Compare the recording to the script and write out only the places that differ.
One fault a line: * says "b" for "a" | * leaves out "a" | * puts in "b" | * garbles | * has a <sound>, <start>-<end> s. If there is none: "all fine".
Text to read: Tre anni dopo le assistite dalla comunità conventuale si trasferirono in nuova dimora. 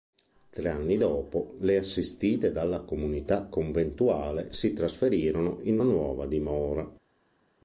all fine